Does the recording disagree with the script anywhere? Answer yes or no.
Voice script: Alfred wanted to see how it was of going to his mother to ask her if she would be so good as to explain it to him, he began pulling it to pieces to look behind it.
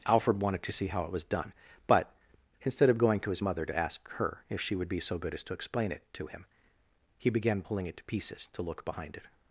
yes